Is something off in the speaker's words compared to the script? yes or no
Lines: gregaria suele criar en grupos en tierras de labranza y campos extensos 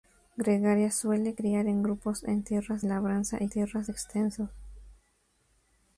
yes